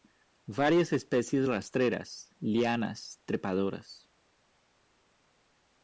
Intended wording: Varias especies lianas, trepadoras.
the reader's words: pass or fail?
fail